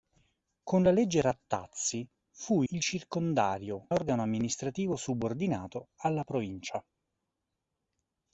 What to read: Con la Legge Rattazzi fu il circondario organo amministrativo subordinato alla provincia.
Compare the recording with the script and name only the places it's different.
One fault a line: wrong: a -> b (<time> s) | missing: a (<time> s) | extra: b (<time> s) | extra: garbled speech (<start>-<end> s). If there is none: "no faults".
no faults